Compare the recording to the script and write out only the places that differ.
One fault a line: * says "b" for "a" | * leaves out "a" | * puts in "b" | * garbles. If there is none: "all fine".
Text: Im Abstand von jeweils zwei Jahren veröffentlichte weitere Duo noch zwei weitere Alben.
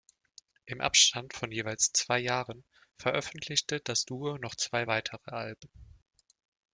* says "das" for "weitere"